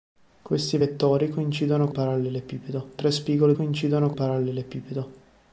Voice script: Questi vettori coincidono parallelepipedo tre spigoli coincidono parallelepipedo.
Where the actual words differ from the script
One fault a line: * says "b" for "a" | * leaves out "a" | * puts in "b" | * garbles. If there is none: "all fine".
all fine